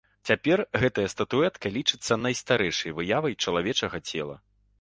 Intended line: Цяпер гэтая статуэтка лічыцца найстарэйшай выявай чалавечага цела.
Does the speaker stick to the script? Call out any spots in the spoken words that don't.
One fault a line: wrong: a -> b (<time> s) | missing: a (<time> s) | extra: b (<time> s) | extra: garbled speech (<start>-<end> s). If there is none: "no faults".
no faults